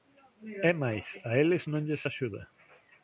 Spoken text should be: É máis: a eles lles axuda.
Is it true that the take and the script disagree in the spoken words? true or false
true